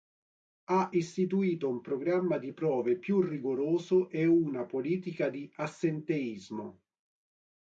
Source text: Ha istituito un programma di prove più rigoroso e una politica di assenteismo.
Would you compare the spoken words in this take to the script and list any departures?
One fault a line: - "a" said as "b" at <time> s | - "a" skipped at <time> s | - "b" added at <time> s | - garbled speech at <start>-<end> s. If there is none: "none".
none